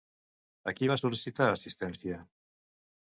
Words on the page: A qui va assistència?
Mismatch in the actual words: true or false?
true